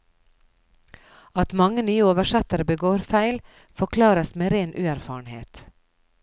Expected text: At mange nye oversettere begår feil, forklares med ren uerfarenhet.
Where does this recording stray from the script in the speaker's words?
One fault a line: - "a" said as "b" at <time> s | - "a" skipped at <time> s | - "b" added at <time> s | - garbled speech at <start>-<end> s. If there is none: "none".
none